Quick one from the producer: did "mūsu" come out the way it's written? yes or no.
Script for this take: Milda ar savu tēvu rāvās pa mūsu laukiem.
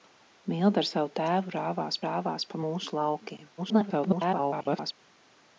yes